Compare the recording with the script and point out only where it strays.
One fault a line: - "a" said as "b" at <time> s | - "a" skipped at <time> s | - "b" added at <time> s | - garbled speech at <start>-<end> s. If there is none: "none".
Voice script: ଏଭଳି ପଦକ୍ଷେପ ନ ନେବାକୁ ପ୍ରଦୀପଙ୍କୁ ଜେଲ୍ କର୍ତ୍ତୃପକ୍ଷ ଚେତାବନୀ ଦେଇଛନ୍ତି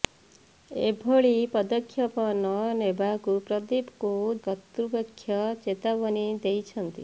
- "ଜେଲ୍" skipped at 4.1 s